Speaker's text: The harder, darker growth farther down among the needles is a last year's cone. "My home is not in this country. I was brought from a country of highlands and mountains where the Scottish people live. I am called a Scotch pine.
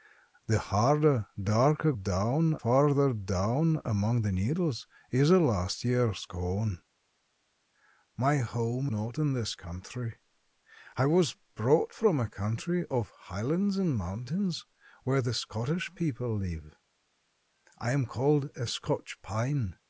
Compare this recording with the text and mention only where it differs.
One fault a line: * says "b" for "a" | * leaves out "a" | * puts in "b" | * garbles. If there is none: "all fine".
* says "down" for "growth"
* leaves out "is"